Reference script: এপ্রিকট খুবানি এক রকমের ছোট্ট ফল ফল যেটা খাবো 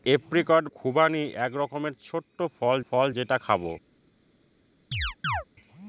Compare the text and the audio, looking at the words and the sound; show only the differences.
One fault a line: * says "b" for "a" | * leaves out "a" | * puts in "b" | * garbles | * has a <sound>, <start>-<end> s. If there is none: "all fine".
* has a chirp, 4.9-5.4 s